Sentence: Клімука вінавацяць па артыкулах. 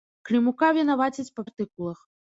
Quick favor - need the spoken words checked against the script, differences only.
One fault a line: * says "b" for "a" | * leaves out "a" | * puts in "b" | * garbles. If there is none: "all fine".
all fine